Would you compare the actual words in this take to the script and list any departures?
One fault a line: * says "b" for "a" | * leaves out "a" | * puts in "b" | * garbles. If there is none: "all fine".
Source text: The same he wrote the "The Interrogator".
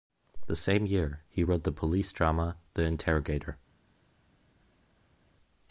* puts in "year"
* puts in "police drama"